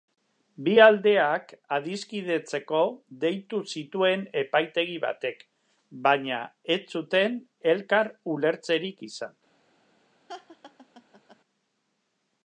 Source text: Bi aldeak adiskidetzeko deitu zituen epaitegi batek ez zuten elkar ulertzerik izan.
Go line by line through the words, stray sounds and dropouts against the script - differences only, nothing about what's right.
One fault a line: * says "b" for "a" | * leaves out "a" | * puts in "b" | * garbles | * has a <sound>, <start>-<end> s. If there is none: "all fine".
* puts in "baina"
* has a laugh, 10.3-11.4 s